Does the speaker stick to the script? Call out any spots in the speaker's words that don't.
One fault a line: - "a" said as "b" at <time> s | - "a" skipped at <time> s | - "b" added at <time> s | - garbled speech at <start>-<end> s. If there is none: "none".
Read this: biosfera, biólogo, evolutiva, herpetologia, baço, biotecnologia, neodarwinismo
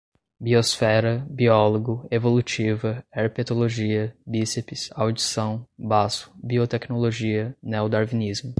- "bíceps audição" added at 4.2 s